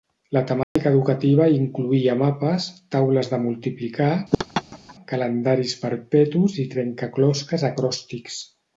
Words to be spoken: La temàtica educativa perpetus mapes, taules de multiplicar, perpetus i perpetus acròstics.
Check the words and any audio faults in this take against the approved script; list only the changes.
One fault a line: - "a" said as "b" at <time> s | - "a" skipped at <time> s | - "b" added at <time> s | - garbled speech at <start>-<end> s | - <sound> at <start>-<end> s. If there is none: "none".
- dropout at 0.6-0.8 s
- "perpetus" said as "incloïa" at 1.6 s
- laugh at 4.3-5.0 s
- "calendaris" added at 5.1 s
- "perpetus" said as "trencaclosques" at 6.8 s